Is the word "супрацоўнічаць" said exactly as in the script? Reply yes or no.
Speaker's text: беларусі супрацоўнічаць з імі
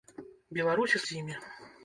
no